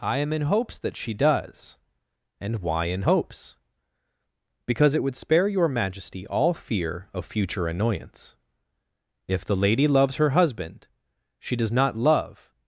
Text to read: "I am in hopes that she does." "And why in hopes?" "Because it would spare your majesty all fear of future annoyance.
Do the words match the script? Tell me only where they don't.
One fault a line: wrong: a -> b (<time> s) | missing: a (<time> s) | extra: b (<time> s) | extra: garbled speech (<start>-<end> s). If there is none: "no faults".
extra: If the lady loves her husband she does not love (9.3 s)